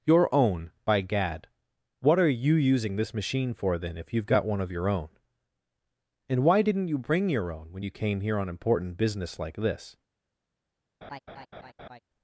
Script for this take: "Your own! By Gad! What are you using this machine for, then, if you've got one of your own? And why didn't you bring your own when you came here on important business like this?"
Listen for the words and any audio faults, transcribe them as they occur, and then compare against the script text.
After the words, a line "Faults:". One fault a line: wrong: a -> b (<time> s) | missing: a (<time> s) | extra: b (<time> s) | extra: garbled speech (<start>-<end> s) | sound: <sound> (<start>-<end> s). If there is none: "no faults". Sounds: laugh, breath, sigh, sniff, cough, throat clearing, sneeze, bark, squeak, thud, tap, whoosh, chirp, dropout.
"Your own! By Gad! What are you using this machine for, then, if you've got one of your own? And why didn't you bring your own when you came here on important business like this?"
Faults:
sound: laugh (11.0-12.0 s)